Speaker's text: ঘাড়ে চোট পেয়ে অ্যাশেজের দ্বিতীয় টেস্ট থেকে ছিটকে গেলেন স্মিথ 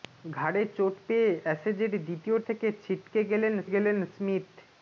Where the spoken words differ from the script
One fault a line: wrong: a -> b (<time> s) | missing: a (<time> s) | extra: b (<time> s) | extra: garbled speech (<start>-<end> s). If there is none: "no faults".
missing: টেস্ট (2.4 s)
extra: গেলেন (3.7 s)